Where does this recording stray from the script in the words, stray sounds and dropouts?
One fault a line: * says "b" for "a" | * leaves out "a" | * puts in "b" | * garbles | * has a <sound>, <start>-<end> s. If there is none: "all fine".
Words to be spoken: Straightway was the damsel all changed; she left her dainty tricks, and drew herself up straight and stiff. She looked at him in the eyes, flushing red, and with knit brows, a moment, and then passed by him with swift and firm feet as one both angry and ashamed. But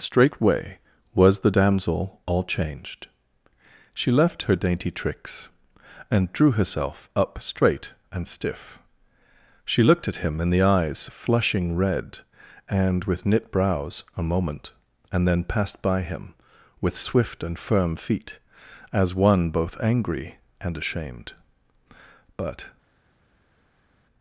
all fine